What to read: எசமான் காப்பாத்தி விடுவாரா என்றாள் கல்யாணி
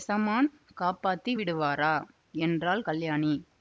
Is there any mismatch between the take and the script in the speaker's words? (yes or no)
no